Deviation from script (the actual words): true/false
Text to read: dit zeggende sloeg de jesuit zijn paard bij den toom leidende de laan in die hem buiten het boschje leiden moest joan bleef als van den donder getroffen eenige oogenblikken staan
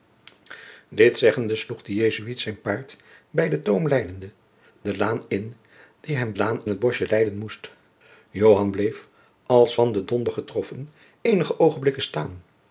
true